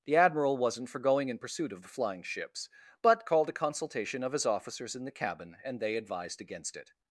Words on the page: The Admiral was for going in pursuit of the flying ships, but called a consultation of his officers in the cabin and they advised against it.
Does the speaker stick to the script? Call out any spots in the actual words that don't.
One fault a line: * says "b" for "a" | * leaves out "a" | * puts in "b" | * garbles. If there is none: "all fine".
* says "wasn't" for "was"